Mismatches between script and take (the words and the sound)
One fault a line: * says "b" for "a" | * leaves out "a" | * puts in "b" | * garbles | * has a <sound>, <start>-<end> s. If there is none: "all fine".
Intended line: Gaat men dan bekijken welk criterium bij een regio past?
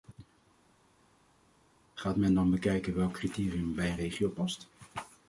all fine